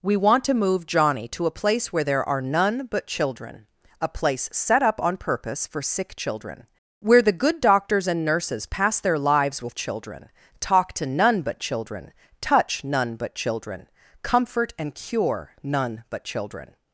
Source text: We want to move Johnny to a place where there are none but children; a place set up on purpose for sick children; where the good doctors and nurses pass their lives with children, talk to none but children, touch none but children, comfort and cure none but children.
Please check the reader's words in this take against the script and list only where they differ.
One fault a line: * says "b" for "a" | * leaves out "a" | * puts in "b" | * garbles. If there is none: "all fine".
all fine